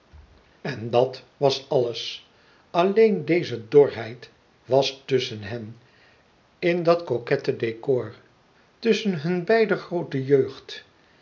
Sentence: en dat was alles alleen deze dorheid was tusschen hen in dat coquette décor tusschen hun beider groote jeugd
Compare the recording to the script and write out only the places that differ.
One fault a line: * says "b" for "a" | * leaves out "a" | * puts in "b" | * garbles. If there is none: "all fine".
all fine